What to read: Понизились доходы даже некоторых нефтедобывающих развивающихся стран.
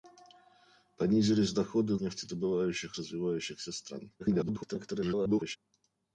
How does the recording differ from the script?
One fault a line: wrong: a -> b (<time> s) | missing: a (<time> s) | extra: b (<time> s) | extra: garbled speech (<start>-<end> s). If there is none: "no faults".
missing: даже некоторых (1.9 s)
extra: garbled speech (4.2-5.6 s)